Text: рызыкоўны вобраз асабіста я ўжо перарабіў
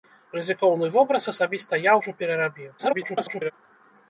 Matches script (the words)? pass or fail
fail